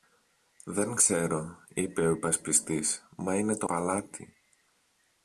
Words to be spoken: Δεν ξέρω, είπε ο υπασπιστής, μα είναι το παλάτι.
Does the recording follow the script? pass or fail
pass